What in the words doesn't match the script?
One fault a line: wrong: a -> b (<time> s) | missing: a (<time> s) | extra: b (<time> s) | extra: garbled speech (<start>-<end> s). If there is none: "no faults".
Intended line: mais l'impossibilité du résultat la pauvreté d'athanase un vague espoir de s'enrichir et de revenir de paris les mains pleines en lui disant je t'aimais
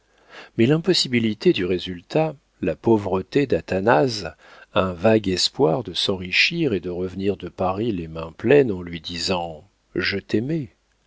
no faults